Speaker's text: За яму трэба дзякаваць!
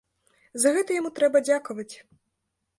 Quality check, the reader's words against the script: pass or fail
fail